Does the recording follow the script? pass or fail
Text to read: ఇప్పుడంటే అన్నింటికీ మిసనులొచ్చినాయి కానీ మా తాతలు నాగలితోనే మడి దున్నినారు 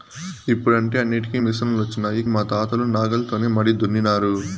fail